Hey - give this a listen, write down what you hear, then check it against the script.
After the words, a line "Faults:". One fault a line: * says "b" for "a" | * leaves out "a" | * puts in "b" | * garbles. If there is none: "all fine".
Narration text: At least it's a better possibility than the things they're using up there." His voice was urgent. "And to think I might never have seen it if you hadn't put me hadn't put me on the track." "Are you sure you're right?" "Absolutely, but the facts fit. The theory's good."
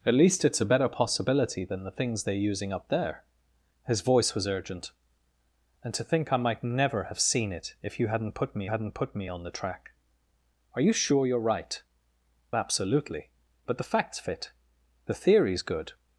At least it's a better possibility than the things they're using up there." His voice was urgent. "And to think I might never have seen it if you hadn't put me hadn't put me on the track." "Are you sure you're right?" "Absolutely, but the facts fit. The theory's good."
Faults:
all fine